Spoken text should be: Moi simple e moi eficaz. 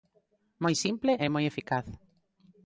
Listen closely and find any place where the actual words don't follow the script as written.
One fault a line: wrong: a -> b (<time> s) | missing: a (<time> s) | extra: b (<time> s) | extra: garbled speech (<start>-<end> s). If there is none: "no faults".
no faults